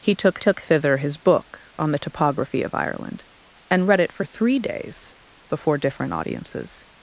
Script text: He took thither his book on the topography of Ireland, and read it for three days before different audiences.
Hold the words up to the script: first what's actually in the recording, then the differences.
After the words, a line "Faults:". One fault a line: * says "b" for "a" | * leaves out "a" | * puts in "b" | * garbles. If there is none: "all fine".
He took took thither his book on the topography of Ireland, and read it for three days before different audiences.
Faults:
* puts in "took"